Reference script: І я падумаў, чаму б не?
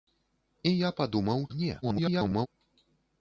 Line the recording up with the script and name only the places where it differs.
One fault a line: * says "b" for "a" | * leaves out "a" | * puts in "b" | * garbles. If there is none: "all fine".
* leaves out "чаму"
* garbles